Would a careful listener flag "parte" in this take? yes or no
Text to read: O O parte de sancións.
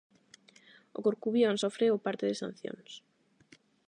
no